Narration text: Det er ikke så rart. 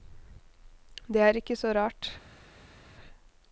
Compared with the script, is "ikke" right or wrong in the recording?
right